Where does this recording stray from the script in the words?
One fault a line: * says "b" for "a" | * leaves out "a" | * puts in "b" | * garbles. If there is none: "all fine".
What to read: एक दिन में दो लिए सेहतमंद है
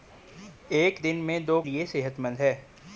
all fine